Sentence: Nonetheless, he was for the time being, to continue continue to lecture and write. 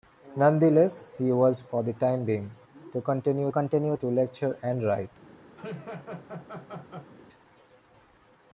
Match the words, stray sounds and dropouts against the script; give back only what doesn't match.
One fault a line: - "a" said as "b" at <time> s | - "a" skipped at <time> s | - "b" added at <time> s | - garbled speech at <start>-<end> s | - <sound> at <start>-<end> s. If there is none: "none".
- laugh at 5.6-7.1 s